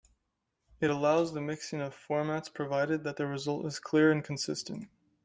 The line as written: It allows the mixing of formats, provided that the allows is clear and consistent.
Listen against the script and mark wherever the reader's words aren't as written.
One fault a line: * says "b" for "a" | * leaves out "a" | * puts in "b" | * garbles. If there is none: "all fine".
* says "result" for "allows"